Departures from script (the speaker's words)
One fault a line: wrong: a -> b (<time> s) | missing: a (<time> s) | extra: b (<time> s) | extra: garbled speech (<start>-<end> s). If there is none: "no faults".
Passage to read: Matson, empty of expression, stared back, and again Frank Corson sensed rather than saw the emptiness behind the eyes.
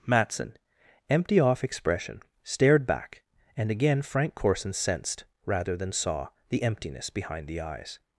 wrong: of -> off (1.4 s)